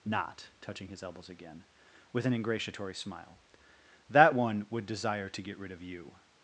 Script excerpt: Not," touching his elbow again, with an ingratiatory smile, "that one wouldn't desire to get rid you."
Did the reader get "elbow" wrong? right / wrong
wrong